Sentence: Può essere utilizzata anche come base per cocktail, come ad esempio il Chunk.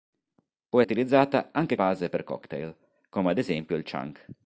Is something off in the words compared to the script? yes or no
yes